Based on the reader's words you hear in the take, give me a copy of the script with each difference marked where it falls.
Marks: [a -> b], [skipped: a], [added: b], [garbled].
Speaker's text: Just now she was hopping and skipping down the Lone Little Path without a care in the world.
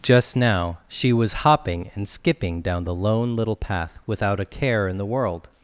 Just now she was hopping and skipping down the Lone Little Path without a care in the world.